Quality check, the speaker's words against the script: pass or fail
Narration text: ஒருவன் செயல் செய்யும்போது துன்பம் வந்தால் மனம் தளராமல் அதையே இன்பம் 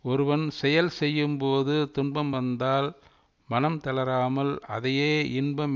pass